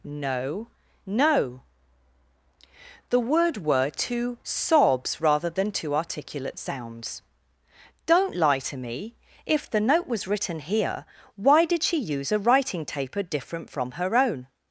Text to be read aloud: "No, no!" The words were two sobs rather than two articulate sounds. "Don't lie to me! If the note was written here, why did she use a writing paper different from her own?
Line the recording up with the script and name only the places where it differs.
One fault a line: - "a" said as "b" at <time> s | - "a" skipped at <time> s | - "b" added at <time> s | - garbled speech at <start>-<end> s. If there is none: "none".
- "words" said as "word" at 3.2 s
- "paper" said as "taper" at 12.8 s